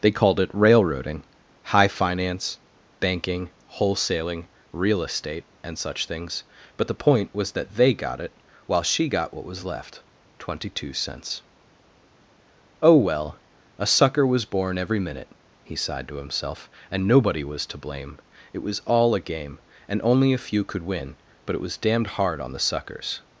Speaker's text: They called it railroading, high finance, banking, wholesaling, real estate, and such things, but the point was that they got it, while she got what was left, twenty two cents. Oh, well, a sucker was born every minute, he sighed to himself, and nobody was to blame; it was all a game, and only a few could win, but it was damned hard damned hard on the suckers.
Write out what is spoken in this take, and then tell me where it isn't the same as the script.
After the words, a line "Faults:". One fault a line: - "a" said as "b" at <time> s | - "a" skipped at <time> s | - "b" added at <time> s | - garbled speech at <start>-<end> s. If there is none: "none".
They called it railroading, high finance, banking, wholesaling, real estate, and such things, but the point was that they got it, while she got what was left, twenty two cents. Oh, well, a sucker was born every minute, he sighed to himself, and nobody was to blame; it was all a game, and only a few could win, but it was damned hard on the suckers.
Faults:
- "damned hard" skipped at 22.4 s